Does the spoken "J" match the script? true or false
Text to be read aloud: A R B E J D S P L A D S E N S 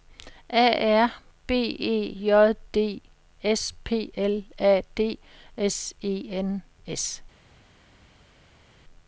true